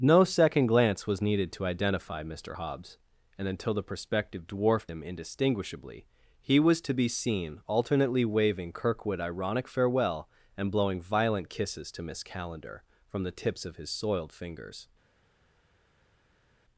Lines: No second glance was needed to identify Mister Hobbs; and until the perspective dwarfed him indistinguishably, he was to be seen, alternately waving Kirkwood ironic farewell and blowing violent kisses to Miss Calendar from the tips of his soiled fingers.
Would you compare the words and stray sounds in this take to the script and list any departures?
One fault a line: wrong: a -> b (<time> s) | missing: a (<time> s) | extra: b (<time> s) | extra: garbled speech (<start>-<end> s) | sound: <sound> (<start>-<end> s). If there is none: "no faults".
no faults